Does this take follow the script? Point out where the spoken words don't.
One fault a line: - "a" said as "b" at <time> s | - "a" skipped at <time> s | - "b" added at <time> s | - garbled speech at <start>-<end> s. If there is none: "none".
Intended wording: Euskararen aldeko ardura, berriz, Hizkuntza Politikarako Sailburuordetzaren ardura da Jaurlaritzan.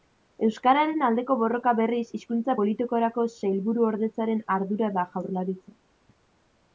- "ardura" said as "borroka" at 1.4 s